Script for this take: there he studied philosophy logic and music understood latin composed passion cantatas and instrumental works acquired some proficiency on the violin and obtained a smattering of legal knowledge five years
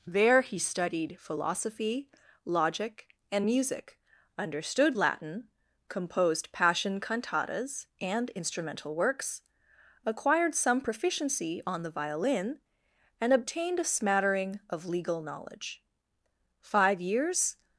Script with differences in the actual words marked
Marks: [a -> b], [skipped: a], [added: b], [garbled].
there he studied philosophy logic and music understood latin composed passion cantatas and instrumental works acquired some proficiency on the violin and obtained a smattering of legal knowledge five years